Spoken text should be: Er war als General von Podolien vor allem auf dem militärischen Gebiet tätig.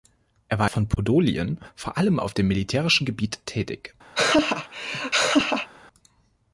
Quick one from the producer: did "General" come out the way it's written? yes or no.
no